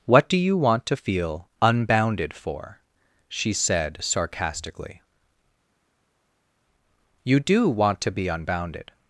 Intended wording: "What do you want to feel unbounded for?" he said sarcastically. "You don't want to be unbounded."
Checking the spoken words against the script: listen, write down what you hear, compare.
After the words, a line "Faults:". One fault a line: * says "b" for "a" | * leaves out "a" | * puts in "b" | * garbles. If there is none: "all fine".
"What do you want to feel unbounded for?" she said sarcastically. "You do want to be unbounded."
Faults:
* says "she" for "he"
* says "do" for "don't"